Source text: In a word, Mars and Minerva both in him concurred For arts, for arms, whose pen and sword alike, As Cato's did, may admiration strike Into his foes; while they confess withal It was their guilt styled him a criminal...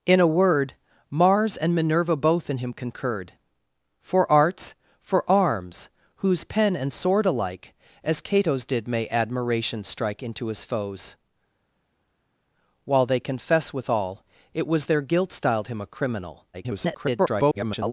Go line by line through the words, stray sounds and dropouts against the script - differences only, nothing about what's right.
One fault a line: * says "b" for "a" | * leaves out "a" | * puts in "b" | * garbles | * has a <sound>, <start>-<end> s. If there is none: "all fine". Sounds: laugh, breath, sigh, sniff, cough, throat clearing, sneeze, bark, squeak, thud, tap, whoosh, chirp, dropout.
* garbles